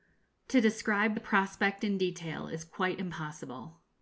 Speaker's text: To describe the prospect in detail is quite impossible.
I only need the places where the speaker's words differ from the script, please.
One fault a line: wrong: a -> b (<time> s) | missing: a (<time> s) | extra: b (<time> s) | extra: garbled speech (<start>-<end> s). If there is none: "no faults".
no faults